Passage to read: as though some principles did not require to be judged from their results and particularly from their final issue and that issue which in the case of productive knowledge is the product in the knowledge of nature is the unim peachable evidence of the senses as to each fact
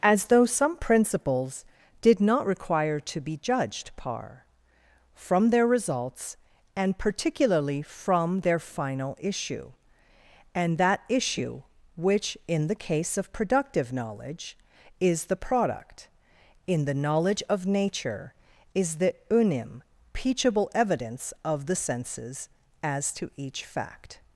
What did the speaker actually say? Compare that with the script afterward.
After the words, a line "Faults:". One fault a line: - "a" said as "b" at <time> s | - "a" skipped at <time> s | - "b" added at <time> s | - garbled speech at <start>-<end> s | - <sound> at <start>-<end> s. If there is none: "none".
as though some principles did not require to be judged par from their results and particularly from their final issue and that issue which in the case of productive knowledge is the product in the knowledge of nature is the unim peachable evidence of the senses as to each fact
Faults:
- "par" added at 4.0 s